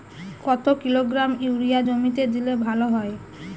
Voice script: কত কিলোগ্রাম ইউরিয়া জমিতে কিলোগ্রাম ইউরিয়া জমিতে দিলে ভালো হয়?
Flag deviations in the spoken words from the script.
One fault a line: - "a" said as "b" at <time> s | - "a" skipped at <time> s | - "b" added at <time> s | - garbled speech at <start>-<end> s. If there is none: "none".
- "কিলোগ্রাম ইউরিয়া জমিতে" skipped at 2.2 s